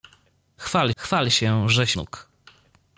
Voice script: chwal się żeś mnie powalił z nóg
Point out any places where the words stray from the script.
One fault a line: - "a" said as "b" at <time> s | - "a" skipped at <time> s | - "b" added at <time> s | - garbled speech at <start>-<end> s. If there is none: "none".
- "chwal" added at 1.0 s
- "mnie powalił z" skipped at 2.0 s